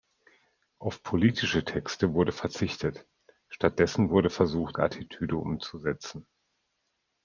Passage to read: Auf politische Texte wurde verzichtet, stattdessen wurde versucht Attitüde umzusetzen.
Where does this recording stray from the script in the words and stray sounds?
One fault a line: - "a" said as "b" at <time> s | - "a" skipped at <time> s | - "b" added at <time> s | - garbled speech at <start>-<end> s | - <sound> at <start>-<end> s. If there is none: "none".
none